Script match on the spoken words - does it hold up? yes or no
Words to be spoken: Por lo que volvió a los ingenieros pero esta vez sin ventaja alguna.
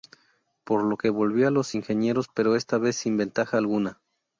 yes